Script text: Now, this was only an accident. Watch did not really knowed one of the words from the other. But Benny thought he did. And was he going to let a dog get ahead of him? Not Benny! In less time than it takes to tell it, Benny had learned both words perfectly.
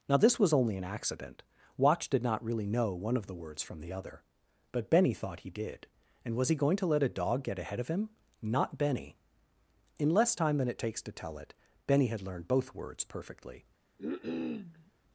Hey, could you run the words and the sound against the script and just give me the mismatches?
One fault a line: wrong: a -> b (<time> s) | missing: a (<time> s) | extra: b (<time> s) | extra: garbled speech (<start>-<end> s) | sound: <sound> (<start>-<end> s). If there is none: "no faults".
wrong: knowed -> know (2.6 s)
sound: cough (14.0-14.9 s)